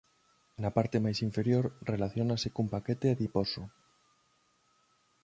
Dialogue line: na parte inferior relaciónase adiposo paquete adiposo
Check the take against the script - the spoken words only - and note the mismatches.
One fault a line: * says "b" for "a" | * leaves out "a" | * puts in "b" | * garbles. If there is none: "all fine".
* puts in "máis"
* says "cun" for "adiposo"